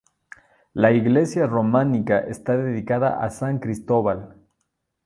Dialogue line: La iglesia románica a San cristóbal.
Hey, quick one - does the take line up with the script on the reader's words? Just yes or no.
no